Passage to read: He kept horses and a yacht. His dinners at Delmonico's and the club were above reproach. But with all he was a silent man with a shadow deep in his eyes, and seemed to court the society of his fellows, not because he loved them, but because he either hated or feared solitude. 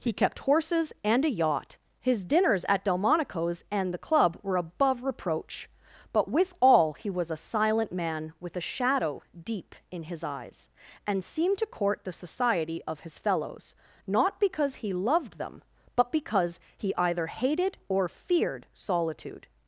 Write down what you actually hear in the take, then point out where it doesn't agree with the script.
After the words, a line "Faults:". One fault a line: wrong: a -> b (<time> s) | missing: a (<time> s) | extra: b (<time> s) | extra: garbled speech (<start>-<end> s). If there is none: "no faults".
He kept horses and a yacht. His dinners at Delmonico's and the club were above reproach. But with all he was a silent man with a shadow deep in his eyes, and seemed to court the society of his fellows, not because he loved them, but because he either hated or feared solitude.
Faults:
no faults